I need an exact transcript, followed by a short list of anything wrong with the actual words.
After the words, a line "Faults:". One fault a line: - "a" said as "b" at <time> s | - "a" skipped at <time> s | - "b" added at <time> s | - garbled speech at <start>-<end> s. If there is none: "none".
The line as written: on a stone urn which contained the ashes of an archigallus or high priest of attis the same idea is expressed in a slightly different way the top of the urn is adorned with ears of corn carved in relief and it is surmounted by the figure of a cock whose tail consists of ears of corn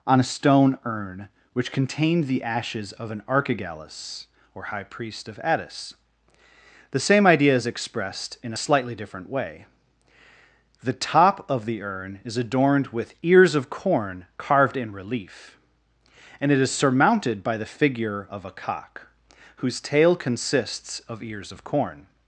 on a stone urn which contained the ashes of an archigallus or high priest of attis the same idea is expressed in a slightly different way the top of the urn is adorned with ears of corn carved in relief and it is surmounted by the figure of a cock whose tail consists of ears of corn
Faults:
none